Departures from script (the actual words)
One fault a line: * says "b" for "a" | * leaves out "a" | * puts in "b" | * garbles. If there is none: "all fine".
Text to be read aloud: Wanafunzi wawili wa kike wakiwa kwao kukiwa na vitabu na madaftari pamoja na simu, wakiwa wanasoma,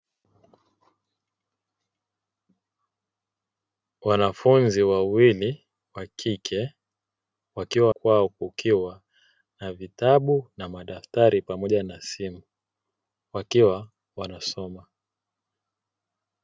all fine